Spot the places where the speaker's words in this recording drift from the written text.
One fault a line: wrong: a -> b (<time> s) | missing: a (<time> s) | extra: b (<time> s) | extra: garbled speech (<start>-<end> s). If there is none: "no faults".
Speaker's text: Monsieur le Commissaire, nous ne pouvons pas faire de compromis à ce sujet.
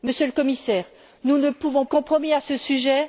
missing: pas faire de (1.9 s)